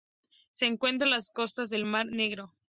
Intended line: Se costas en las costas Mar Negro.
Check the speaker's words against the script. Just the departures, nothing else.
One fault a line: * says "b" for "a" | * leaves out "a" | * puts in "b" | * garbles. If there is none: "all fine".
* says "encuentra" for "costas"
* puts in "del"